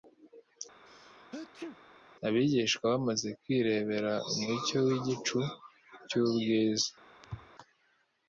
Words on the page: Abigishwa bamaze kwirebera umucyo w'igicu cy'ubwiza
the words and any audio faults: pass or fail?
fail